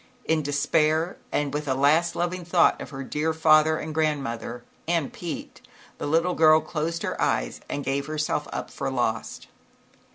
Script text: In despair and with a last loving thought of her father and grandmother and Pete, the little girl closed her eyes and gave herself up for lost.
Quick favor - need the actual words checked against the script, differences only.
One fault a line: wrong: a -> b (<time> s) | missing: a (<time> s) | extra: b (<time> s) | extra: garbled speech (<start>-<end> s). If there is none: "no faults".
extra: dear (3.0 s)